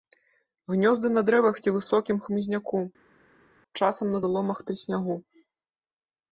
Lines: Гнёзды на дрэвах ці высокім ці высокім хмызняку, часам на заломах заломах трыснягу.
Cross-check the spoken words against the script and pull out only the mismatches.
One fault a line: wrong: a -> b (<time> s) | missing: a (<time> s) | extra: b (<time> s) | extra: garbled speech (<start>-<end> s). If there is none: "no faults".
missing: ці высокім (2.2 s)
missing: заломах (4.6 s)